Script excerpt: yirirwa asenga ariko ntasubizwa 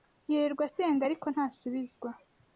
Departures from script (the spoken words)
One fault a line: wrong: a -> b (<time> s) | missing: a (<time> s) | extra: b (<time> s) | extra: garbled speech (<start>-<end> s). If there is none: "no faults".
no faults